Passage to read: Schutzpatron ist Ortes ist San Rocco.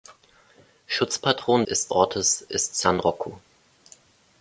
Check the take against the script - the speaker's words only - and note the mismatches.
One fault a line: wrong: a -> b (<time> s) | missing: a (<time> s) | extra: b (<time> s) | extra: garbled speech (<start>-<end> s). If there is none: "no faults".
no faults